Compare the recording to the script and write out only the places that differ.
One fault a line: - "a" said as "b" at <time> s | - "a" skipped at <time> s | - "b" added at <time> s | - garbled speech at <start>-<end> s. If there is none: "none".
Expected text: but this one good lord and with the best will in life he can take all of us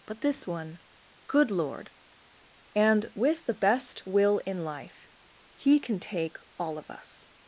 none